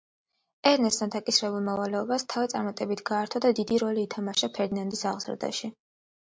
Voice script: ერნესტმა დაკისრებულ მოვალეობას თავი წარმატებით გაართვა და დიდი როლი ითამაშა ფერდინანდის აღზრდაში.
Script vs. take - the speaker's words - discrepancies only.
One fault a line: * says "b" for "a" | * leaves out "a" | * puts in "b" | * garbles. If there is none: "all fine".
all fine